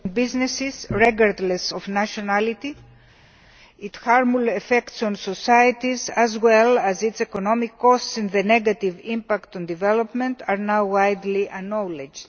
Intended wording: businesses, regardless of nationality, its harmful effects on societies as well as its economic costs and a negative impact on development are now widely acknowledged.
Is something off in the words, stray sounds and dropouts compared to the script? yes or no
yes